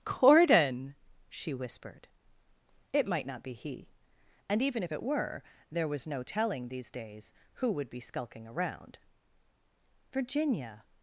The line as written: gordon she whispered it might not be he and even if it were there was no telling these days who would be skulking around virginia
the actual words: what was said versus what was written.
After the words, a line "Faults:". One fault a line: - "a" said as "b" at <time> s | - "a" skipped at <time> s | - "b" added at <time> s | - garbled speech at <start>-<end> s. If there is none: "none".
gordon she whispered it might not be he and even if it were there was no telling these days who would be skulking around virginia
Faults:
none